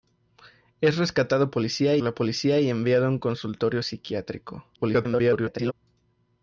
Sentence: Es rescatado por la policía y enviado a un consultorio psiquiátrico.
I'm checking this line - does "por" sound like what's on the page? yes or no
no